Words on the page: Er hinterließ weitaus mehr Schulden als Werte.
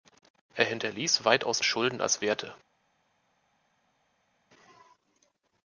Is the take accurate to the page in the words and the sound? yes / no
no